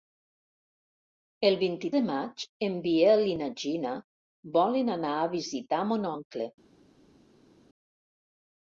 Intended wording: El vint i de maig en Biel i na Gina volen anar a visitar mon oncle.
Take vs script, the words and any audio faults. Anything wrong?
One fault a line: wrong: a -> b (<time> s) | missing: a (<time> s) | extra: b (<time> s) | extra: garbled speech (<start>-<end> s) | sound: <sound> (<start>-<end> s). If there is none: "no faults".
no faults